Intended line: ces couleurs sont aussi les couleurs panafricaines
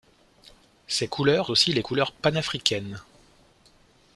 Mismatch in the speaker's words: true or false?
true